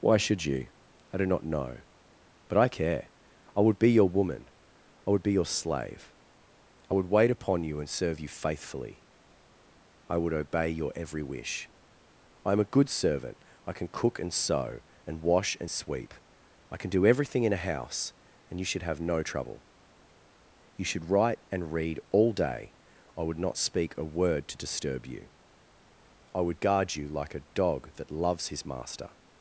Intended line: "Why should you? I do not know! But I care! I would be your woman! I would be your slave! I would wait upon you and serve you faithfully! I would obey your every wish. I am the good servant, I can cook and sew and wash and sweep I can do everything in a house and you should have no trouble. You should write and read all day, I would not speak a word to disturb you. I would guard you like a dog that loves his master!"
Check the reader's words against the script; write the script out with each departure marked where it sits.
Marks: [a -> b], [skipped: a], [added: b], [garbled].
"Why should you? I do not know! But I care! I would be your woman! I would be your slave! I would wait upon you and serve you faithfully! I would obey your every wish. I am [the -> a] good servant, I can cook and sew and wash and sweep I can do everything in a house and you should have no trouble. You should write and read all day, I would not speak a word to disturb you. I would guard you like a dog that loves his master!"